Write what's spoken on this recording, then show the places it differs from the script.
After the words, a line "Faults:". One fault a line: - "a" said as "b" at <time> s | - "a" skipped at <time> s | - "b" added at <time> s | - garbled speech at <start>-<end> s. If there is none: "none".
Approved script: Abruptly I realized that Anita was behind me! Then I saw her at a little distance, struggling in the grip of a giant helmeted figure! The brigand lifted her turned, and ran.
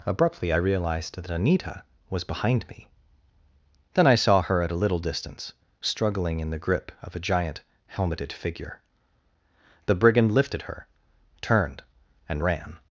Abruptly I realized that Anita was behind me! Then I saw her at a little distance, struggling in the grip of a giant helmeted figure! The brigand lifted her turned, and ran.
Faults:
none